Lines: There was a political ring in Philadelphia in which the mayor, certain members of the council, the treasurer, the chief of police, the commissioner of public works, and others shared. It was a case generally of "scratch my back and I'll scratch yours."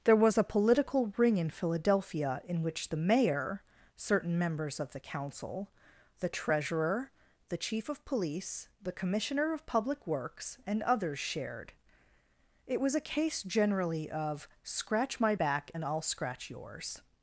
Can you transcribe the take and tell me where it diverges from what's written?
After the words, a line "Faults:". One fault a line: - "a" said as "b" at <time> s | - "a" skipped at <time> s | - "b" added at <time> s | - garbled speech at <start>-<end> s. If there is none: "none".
There was a political ring in Philadelphia in which the mayor, certain members of the council, the treasurer, the chief of police, the commissioner of public works, and others shared. It was a case generally of "scratch my back and I'll scratch yours."
Faults:
none